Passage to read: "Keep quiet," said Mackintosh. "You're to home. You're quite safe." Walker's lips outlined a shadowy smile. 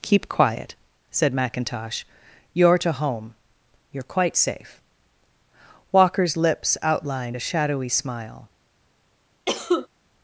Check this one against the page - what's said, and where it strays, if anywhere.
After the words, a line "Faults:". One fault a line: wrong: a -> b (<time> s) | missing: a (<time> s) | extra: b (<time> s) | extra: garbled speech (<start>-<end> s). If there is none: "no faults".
"Keep quiet," said Mackintosh. "You're to home. You're quite safe." Walker's lips outlined a shadowy smile.
Faults:
no faults